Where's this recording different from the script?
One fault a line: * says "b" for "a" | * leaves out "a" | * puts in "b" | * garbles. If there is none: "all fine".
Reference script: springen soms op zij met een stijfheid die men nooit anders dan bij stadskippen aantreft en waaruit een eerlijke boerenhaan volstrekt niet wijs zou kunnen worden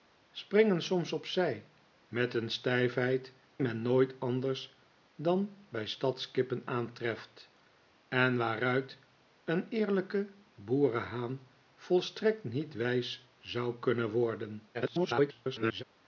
* leaves out "die"
* garbles